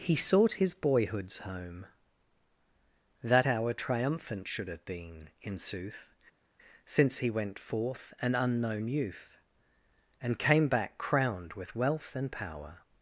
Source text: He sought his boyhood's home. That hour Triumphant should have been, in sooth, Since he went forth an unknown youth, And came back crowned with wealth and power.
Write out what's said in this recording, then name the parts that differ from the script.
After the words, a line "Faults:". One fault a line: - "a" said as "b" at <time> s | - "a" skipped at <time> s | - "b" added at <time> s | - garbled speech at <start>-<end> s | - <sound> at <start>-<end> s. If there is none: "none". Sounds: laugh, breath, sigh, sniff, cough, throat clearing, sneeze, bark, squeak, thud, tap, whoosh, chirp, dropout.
He sought his boyhood's home. That hour Triumphant should have been, in sooth, Since he went forth an unknown youth, And came back crowned with wealth and power.
Faults:
none